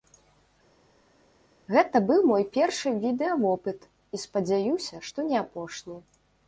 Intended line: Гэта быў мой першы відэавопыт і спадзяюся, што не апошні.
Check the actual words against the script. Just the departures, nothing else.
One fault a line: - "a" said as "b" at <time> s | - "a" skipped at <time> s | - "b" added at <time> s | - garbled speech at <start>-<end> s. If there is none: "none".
none